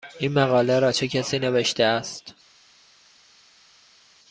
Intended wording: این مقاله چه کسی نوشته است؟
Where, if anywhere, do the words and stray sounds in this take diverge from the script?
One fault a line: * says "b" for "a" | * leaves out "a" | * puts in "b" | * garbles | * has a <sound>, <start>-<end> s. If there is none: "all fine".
* puts in "را"